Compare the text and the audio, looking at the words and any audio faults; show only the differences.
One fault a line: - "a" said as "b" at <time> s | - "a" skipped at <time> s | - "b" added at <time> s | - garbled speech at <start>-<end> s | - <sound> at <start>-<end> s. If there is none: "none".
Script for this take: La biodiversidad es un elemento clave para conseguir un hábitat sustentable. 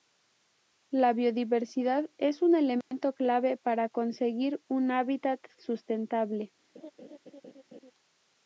- dropout at 2.8-2.9 s
- laugh at 6.7-7.9 s